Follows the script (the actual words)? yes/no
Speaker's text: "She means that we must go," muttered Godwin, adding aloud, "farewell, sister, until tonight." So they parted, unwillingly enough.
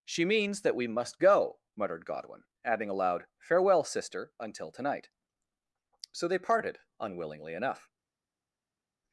yes